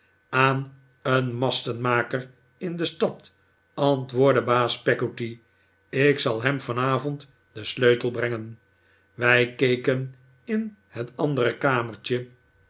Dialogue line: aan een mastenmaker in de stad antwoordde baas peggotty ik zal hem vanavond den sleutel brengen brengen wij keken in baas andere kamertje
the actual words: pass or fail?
fail